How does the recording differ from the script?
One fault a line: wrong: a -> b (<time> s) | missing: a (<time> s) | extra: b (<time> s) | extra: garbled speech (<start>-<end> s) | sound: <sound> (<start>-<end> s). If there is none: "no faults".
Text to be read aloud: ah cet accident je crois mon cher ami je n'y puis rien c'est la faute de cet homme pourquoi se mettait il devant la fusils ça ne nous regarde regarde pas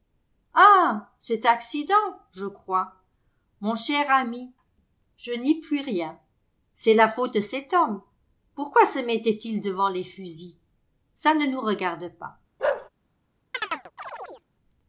wrong: la -> les (9.9 s)
missing: regarde (12.1 s)
sound: bark (12.6-12.9 s)
sound: chirp (13.5-14.4 s)